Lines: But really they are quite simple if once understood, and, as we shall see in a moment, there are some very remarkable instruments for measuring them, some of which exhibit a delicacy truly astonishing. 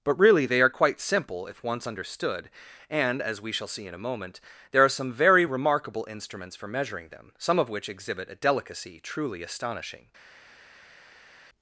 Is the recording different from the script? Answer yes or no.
no